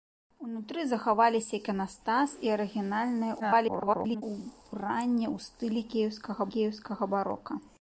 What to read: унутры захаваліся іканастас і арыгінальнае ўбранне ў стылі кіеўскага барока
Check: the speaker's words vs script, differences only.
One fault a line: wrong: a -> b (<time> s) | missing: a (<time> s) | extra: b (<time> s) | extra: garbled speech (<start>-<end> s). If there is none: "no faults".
extra: garbled speech (3.4-4.2 s)
extra: кіеўскага (6.6 s)